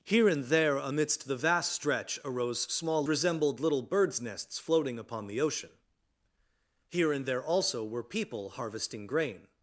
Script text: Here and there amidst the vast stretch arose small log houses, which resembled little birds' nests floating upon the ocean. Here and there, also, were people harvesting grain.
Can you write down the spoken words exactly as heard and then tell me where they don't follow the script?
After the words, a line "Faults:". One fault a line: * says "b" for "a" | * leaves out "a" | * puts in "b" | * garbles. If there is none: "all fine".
Here and there amidst the vast stretch arose small resembled little birds' nests floating upon the ocean. Here and there, also, were people harvesting grain.
Faults:
* leaves out "log houses which"